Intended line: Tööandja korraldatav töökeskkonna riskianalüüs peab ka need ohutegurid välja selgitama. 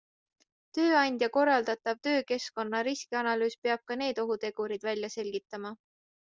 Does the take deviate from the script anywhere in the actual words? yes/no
no